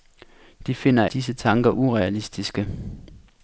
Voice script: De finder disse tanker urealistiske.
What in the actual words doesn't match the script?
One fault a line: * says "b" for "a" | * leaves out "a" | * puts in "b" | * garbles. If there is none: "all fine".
all fine